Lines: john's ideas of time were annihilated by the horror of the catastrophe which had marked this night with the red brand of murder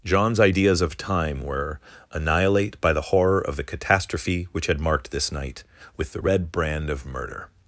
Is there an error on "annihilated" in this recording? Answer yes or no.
yes